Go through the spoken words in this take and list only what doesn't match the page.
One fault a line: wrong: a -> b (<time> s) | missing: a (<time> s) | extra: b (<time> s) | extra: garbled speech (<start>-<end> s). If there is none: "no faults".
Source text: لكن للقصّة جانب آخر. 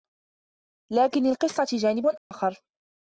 no faults